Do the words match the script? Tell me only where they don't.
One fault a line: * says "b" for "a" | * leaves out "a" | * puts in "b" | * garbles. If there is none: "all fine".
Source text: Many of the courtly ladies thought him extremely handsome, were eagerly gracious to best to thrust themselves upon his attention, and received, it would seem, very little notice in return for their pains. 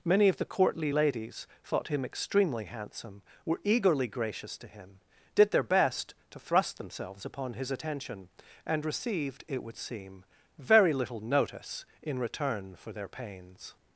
* puts in "him did their"